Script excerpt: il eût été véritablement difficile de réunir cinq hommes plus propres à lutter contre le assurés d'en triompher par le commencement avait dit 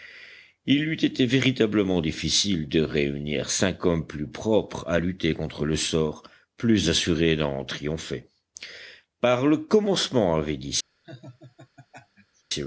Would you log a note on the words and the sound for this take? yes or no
yes